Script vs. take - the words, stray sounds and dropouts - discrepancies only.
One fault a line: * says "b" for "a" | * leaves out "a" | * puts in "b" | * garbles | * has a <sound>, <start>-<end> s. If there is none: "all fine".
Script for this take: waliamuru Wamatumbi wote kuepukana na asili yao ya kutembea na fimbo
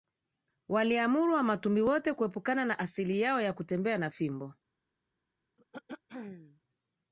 * has a throat clearing, 5.6-6.6 s